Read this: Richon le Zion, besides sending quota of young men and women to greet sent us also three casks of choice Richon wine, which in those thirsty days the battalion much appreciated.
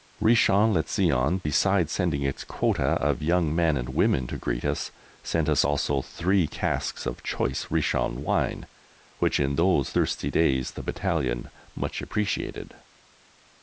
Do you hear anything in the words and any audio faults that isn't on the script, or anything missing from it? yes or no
yes